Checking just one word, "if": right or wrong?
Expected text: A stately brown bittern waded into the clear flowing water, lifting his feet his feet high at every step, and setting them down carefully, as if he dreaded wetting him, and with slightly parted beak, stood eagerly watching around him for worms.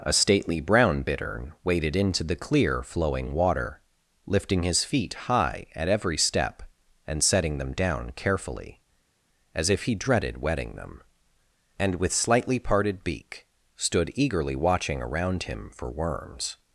right